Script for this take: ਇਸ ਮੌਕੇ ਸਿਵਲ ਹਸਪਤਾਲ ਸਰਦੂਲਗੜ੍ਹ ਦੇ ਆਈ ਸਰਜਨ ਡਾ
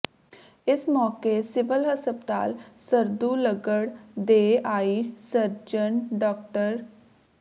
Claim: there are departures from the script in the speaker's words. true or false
false